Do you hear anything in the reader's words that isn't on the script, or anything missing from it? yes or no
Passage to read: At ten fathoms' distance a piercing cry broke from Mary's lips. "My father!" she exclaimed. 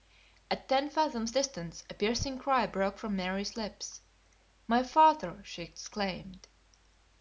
no